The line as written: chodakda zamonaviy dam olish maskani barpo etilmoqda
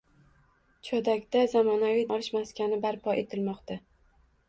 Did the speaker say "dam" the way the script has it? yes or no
no